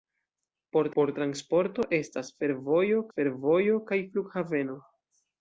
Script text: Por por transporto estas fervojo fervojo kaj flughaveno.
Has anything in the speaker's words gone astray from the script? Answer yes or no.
no